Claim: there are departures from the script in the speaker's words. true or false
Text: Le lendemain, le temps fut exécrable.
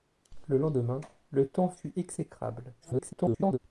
true